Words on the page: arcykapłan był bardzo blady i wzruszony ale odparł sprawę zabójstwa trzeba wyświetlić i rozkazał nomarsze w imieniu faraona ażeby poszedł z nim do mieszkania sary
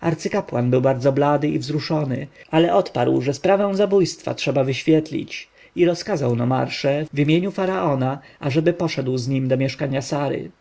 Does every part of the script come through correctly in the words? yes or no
no